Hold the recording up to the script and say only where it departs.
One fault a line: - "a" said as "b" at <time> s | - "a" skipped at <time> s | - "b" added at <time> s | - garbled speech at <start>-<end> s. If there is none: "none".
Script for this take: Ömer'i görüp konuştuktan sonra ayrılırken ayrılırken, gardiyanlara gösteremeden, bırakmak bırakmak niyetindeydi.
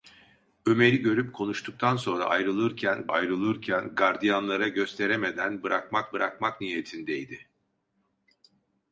none